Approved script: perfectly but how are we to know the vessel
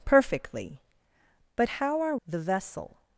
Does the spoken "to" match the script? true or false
false